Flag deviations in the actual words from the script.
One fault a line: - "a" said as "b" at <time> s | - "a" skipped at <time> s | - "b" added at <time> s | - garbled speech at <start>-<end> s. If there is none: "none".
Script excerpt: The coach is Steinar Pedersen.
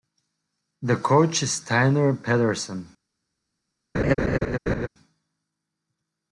none